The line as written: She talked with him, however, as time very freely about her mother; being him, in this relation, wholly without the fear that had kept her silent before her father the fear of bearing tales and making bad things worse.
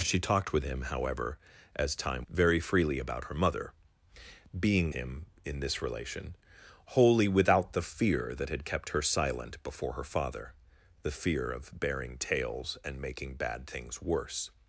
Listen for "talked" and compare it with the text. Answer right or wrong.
right